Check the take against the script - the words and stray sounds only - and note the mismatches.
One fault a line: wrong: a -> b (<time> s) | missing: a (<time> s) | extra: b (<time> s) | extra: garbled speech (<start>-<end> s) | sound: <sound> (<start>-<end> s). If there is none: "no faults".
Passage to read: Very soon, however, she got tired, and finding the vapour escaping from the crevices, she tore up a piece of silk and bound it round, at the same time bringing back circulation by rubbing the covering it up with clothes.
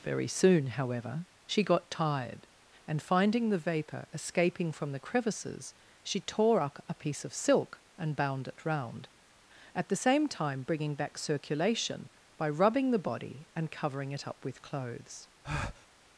extra: body and (13.0 s)
sound: breath (15.4-15.9 s)